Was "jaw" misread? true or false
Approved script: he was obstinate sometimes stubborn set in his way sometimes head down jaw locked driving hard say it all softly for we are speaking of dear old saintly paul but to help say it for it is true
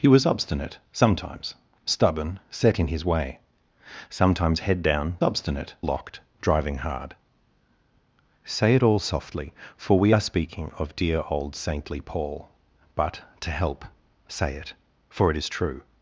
true